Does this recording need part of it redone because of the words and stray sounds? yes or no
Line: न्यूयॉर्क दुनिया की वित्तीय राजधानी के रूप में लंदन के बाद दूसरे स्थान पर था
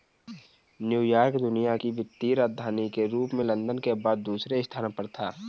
no